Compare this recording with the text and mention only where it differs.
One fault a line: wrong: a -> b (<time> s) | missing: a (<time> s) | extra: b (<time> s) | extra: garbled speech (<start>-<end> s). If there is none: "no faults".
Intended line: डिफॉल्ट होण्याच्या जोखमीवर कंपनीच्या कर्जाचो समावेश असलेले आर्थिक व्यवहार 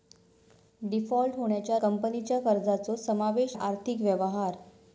missing: जोखमीवर (1.8 s)
missing: असलेले (3.6 s)